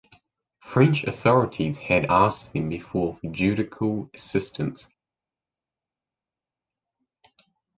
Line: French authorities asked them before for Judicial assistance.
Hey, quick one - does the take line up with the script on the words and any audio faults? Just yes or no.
no